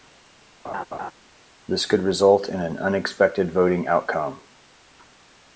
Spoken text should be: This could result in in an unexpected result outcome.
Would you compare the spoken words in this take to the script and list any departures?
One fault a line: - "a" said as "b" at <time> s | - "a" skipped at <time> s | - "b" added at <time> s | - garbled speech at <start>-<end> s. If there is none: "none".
- "in" skipped at 2.6 s
- "result" said as "voting" at 3.5 s